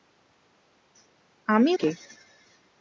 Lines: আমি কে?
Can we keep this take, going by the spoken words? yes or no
yes